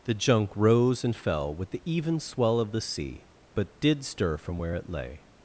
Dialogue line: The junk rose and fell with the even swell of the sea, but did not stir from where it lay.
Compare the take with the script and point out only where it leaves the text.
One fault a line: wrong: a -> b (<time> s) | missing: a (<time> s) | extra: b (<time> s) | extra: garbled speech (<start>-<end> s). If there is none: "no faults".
missing: not (4.0 s)